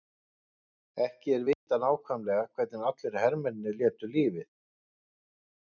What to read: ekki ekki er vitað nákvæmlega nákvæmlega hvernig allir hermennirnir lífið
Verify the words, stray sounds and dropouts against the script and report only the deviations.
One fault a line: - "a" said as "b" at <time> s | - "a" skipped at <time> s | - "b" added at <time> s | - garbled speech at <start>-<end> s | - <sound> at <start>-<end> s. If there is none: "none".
- "ekki" skipped at 1.4 s
- dropout at 1.5-1.7 s
- "nákvæmlega" skipped at 2.5 s
- "létu" added at 3.8 s